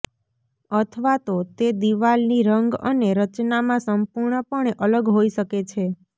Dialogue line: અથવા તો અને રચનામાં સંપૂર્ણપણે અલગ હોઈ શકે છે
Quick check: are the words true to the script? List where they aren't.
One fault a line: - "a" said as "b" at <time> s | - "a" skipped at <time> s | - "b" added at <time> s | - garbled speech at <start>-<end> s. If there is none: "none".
- "તે દિવાલની રંગ" added at 1.6 s